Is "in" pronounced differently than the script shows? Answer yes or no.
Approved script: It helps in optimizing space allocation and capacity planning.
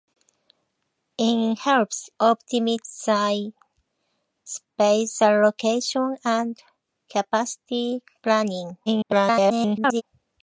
yes